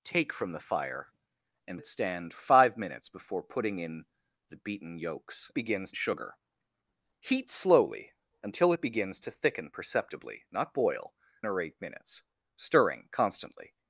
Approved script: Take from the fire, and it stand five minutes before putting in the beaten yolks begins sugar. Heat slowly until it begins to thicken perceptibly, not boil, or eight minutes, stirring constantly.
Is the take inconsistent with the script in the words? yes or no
no